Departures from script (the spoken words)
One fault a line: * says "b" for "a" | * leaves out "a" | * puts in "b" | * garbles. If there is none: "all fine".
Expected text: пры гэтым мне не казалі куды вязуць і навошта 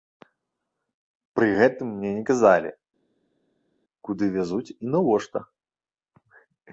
all fine